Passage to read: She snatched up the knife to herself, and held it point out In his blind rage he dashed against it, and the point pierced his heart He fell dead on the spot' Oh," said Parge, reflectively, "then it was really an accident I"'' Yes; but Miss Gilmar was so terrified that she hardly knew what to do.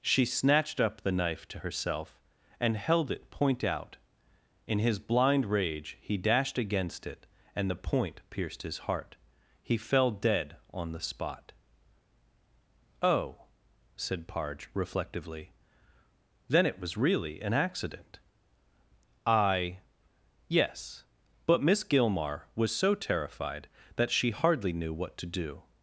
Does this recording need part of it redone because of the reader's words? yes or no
no